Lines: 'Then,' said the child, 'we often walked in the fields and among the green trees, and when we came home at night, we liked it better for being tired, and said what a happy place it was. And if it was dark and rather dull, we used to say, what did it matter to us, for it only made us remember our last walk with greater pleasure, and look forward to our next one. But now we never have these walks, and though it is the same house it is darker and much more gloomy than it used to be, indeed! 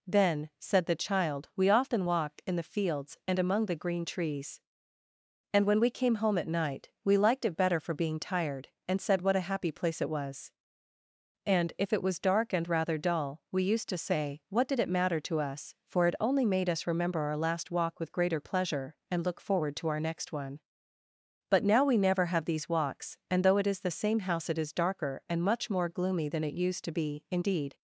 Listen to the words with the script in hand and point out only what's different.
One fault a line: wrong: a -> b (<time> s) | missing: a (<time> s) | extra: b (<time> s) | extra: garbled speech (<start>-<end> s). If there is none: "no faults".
no faults